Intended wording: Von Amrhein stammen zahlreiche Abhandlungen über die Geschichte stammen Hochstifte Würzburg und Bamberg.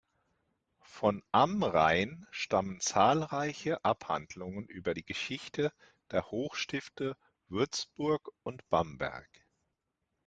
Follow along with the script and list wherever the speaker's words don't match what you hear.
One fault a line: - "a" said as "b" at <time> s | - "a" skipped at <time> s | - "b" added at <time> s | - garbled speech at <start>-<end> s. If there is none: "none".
- "stammen" said as "der" at 6.1 s